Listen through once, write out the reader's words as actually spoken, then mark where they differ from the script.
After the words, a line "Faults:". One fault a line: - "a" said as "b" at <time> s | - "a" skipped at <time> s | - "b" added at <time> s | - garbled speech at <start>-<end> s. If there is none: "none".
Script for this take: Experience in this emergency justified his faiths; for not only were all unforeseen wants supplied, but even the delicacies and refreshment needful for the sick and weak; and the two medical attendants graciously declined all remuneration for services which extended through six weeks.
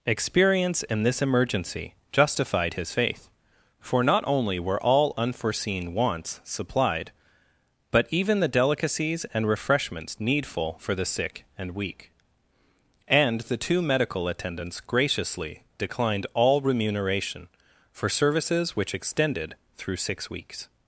Experience in this emergency justified his faith; for not only were all unforeseen wants supplied, but even the delicacies and refreshments needful for the sick and weak; and the two medical attendants graciously declined all remuneration for services which extended through six weeks.
Faults:
- "faiths" said as "faith" at 2.9 s
- "refreshment" said as "refreshments" at 9.5 s